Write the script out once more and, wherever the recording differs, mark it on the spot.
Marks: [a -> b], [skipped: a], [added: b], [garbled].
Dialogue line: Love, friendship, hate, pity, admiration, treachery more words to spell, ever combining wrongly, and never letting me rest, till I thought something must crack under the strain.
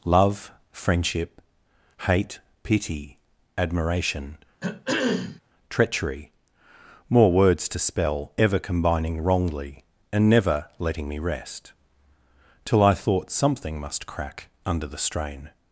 Love, friendship, hate, pity, admiration, treachery more words to spell, ever combining wrongly, and never letting me rest, till I thought something must crack under the strain.